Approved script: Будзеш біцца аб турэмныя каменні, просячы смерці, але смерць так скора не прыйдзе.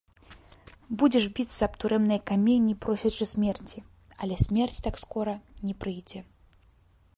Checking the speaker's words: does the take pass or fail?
pass